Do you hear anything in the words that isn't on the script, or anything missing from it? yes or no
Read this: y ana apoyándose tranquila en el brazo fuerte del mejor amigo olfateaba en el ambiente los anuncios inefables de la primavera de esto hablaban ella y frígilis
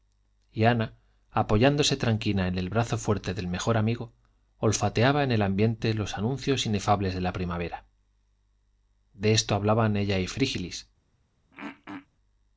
no